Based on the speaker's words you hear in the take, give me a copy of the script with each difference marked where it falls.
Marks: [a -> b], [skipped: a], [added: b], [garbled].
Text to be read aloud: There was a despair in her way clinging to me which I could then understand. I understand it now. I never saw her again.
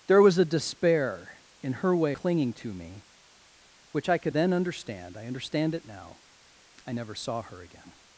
There was a despair in her way clinging to me which I could then understand. I understand it now. I never saw her again.